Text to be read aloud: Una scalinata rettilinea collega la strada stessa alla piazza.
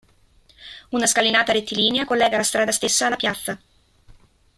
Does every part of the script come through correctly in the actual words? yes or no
yes